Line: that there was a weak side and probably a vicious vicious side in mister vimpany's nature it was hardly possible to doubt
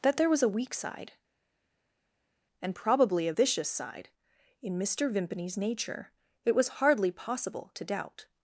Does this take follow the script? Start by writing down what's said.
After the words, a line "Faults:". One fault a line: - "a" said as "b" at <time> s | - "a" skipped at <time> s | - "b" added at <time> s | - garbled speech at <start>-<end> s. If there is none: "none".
that there was a weak side and probably a vicious side in mister vimpany's nature it was hardly possible to doubt
Faults:
- "vicious" skipped at 3.7 s